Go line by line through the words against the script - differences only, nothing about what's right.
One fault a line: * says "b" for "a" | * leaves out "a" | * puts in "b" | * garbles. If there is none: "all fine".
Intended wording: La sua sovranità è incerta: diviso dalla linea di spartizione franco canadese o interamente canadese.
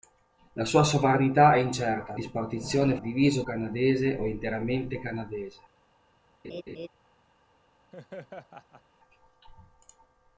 * leaves out "diviso dalla linea"
* says "diviso" for "franco"